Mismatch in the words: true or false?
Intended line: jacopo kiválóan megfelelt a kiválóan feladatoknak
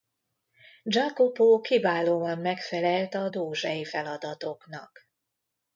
true